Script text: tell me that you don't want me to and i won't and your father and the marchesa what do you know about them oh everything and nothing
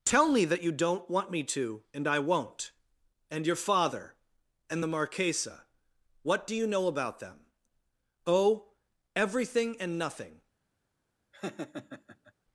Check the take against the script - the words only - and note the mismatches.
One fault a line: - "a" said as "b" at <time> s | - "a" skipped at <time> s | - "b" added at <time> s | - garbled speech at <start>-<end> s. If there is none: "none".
none